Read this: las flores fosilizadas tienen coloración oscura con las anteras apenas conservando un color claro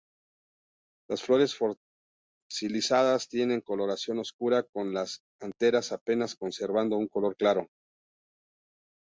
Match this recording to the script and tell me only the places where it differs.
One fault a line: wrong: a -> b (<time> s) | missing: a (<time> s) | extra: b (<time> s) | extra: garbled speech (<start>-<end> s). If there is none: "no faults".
no faults